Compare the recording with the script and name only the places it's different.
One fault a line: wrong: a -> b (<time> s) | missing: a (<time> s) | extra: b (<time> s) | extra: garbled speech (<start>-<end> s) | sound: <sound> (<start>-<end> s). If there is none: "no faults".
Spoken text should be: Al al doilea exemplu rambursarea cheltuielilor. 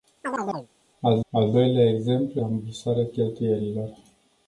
sound: chirp (0.2-0.7 s)